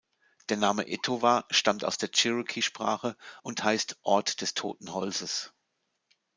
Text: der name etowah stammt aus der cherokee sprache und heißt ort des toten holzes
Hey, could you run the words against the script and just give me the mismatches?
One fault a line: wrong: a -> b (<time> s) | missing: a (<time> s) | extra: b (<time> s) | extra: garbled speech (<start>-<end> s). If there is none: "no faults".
no faults